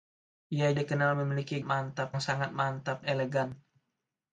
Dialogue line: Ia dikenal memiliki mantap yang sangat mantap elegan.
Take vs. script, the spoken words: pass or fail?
pass